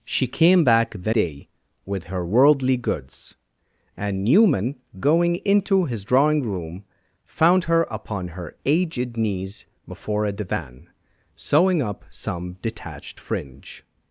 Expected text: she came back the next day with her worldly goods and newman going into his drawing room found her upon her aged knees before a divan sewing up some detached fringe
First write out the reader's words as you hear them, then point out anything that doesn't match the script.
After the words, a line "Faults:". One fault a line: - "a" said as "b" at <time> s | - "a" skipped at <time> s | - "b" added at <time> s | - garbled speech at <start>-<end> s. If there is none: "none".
she came back the day with her worldly goods and newman going into his drawing room found her upon her aged knees before a divan sewing up some detached fringe
Faults:
- "next" skipped at 1.1 s